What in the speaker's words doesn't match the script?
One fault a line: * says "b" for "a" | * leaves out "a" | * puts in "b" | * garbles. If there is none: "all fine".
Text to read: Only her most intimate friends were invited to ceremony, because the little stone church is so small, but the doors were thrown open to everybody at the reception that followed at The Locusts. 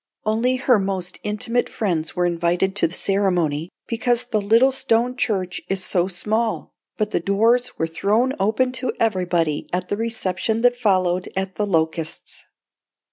all fine